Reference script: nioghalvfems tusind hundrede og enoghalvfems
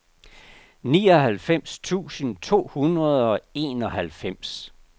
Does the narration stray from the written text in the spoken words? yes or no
yes